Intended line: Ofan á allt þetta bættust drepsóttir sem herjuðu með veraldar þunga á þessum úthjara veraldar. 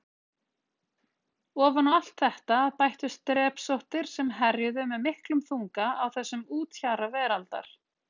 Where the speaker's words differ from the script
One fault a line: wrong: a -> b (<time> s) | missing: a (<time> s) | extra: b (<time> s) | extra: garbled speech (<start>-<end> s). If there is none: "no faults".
wrong: veraldar -> miklum (5.1 s)